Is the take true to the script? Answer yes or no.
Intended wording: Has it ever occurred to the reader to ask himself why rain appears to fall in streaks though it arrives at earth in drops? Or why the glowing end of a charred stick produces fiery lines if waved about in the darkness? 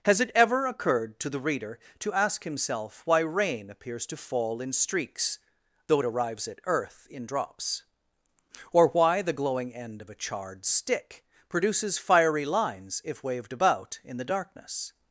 yes